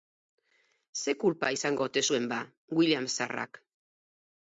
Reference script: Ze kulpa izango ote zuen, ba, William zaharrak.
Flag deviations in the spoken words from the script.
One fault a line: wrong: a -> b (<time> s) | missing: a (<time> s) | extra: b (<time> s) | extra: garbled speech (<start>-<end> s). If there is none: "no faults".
no faults